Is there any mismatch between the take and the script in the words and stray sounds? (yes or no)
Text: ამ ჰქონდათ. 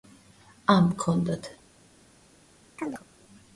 yes